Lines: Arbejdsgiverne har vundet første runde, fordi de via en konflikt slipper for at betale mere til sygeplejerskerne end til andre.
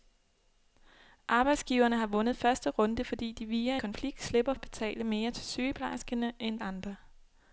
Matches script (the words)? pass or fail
fail